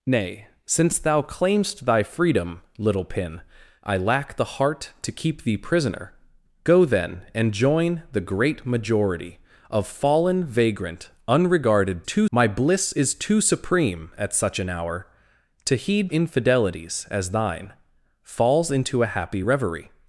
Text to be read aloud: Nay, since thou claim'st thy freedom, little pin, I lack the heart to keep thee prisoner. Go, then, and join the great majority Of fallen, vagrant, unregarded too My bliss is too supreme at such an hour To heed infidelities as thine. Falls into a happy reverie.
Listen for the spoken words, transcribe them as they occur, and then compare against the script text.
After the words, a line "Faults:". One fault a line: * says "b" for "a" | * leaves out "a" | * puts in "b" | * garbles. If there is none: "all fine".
Nay, since thou claim'st thy freedom, little pin, I lack the heart to keep thee prisoner. Go, then, and join the great majority Of fallen, vagrant, unregarded too My bliss is too supreme at such an hour To heed infidelities as thine. Falls into a happy reverie.
Faults:
all fine